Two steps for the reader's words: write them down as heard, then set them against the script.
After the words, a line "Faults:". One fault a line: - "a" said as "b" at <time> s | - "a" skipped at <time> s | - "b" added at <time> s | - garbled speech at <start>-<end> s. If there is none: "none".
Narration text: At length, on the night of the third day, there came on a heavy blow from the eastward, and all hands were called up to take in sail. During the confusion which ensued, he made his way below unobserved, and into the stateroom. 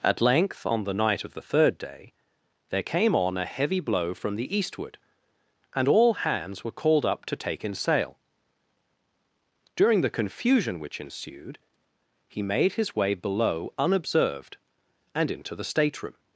At length, on the night of the third day, there came on a heavy blow from the eastward, and all hands were called up to take in sail. During the confusion which ensued, he made his way below unobserved, and into the stateroom.
Faults:
none